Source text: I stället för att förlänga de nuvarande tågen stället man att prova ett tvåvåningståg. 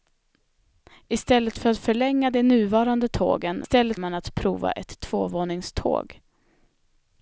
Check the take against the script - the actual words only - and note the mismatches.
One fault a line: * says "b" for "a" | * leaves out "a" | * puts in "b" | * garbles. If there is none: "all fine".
all fine